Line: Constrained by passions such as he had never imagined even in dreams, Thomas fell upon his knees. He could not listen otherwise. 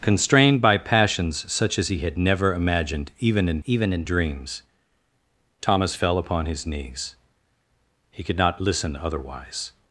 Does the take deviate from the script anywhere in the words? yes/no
yes